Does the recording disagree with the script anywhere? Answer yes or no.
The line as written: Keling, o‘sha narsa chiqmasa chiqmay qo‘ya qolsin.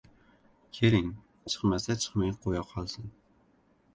yes